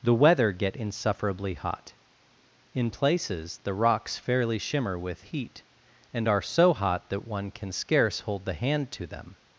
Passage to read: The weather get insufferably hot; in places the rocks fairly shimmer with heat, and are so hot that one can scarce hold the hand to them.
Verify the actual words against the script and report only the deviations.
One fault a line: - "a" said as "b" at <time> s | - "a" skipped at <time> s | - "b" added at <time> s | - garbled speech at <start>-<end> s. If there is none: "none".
none